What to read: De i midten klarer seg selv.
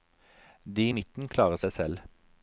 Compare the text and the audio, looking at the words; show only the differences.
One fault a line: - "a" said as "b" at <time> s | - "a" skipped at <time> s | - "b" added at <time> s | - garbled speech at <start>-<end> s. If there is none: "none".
none